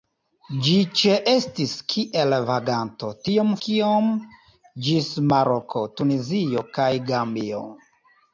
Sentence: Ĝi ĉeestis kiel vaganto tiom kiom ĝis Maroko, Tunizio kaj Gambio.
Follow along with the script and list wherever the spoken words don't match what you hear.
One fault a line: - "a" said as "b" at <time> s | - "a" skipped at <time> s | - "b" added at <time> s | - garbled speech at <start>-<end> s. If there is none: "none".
none